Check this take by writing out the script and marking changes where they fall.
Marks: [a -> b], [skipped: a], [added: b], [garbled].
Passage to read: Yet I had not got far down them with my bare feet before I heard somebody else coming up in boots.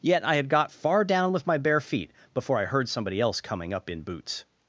Yet I had [skipped: not] got far down [skipped: them] with my bare feet before I heard somebody else coming up in boots.